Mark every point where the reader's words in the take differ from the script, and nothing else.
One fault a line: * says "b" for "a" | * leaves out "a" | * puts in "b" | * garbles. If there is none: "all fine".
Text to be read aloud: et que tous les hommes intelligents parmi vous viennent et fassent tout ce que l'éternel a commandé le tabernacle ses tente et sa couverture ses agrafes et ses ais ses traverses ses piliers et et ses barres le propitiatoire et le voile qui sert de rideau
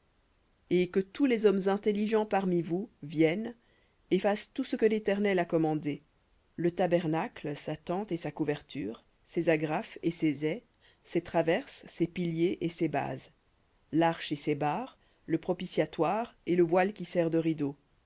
* says "sa" for "ses"
* puts in "ses bases larche"